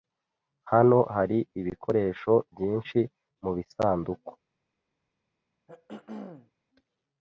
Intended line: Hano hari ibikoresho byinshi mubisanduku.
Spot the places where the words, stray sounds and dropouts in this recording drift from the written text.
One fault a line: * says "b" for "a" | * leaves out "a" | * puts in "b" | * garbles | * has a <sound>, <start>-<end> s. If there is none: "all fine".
* has a throat clearing, 5.7-6.5 s